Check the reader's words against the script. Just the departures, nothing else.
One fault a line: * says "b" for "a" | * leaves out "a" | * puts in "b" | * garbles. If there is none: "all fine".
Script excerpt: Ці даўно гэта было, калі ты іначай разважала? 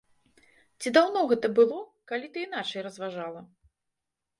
all fine